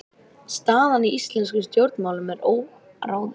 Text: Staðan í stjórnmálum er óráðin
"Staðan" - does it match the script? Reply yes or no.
yes